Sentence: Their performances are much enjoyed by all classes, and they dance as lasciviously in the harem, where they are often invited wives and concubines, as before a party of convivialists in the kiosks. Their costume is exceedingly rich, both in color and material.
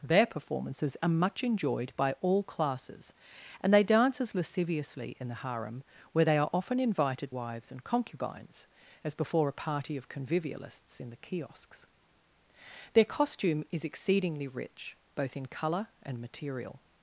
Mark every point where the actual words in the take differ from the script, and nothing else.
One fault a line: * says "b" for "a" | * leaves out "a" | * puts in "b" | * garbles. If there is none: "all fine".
all fine